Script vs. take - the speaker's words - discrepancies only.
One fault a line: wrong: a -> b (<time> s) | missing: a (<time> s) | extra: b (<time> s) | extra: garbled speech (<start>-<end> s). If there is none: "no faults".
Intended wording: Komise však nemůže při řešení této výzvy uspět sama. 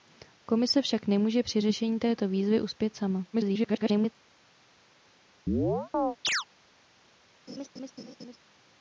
extra: garbled speech (3.3-4.1 s)